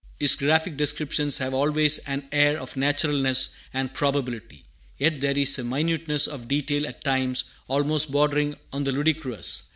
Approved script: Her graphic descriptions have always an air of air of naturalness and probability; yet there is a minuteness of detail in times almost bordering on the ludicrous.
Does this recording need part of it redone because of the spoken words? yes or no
yes